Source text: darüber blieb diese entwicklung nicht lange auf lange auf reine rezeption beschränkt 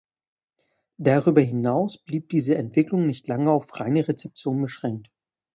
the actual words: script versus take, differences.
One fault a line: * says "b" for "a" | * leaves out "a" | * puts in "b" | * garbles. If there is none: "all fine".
* puts in "hinaus"
* leaves out "lange auf"